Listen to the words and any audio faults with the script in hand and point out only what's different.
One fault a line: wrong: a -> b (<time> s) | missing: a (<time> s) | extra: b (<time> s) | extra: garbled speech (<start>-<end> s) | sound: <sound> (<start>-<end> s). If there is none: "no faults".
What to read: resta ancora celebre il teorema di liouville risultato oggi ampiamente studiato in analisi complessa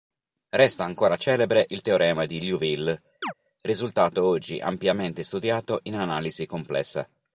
sound: chirp (3.2-3.3 s)